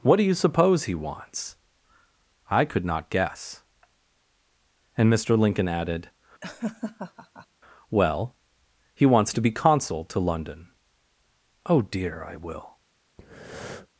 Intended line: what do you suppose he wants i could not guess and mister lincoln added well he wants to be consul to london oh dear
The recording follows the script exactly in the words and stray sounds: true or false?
false